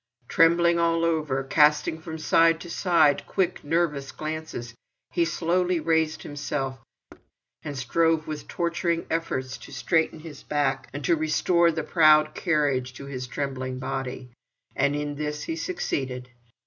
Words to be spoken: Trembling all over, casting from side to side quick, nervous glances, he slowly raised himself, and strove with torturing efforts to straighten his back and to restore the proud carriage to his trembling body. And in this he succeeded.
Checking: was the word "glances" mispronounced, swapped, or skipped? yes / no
no